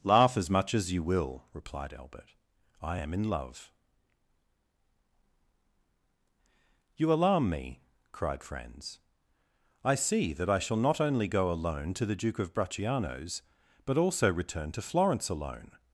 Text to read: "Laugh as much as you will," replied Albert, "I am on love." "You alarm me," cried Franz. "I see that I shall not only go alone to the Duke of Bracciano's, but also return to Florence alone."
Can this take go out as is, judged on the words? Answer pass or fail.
fail